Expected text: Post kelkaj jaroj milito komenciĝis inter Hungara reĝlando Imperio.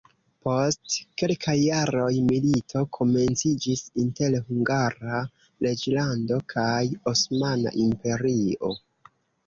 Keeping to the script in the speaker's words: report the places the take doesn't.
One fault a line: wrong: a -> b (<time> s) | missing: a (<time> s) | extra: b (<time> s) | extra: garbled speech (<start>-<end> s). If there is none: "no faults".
extra: kaj Osmana (6.6 s)